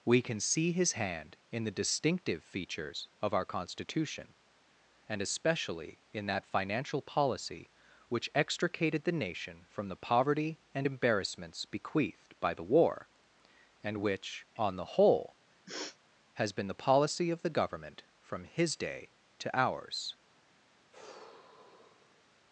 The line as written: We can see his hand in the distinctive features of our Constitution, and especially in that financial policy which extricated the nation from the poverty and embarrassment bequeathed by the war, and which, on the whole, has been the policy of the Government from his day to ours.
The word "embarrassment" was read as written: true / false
false